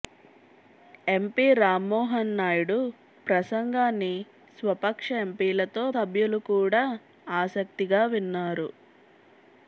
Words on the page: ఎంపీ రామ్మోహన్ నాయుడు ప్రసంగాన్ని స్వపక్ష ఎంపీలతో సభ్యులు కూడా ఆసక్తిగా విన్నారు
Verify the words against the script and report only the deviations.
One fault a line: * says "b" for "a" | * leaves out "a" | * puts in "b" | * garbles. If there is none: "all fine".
all fine